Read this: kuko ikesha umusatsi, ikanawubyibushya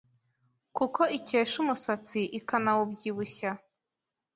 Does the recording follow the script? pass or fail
pass